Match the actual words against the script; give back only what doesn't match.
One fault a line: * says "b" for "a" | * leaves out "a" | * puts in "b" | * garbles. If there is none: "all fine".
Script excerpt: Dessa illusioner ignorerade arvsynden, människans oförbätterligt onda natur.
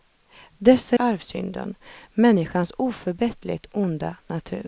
* leaves out "illusioner ignorerade"